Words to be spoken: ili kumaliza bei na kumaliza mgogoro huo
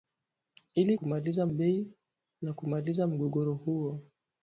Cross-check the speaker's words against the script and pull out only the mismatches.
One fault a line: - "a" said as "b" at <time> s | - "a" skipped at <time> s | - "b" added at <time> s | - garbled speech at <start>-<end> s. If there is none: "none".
none